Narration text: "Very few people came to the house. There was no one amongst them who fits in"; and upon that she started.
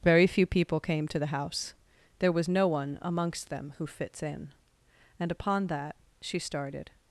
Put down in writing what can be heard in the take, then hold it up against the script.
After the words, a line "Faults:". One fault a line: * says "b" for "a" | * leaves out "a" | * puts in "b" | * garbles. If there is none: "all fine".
"Very few people came to the house. There was no one amongst them who fits in"; and upon that she started.
Faults:
all fine